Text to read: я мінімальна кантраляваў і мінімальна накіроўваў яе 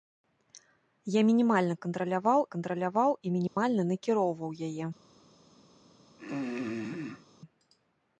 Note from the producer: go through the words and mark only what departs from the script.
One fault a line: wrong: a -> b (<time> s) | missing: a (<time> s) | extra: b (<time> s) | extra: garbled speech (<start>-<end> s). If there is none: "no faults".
extra: кантраляваў (2.5 s)